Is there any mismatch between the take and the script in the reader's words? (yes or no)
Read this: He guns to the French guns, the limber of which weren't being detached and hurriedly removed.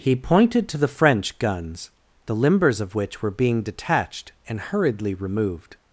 yes